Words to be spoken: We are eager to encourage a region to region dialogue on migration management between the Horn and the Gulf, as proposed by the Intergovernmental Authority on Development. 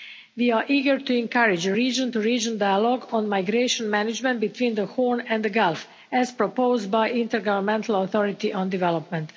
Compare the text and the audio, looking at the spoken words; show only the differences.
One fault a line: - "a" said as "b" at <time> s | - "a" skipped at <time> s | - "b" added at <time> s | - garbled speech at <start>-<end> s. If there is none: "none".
none